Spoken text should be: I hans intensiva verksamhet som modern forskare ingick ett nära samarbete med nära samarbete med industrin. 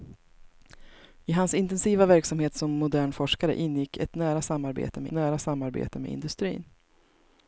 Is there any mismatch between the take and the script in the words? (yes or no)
no